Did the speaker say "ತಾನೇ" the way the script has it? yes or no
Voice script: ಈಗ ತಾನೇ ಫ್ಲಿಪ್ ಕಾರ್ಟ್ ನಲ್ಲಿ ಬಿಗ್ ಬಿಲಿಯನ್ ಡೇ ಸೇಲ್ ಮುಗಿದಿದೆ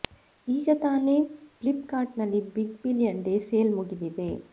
yes